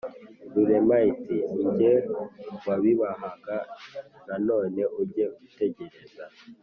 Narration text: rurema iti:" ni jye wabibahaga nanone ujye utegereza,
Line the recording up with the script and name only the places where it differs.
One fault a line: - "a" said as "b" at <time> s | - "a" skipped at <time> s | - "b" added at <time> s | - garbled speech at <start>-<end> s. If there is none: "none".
none